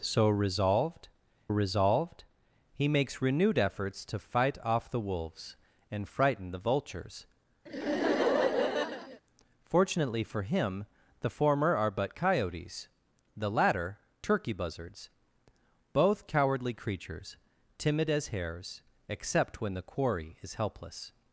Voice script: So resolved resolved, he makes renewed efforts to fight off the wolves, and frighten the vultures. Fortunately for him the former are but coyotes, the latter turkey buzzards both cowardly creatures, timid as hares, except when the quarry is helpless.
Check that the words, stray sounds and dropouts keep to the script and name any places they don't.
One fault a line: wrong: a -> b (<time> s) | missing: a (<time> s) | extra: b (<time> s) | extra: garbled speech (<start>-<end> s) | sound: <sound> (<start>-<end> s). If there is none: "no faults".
sound: laugh (7.7-9.2 s)